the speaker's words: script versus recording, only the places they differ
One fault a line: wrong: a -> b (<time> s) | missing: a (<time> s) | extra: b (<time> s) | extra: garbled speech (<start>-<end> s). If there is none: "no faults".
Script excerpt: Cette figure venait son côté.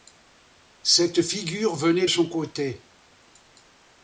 no faults